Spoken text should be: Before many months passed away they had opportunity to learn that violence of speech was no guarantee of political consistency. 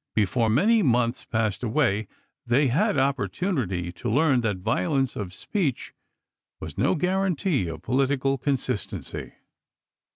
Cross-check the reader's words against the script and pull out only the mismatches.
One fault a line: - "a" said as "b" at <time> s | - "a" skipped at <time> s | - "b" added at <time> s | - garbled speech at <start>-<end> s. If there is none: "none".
none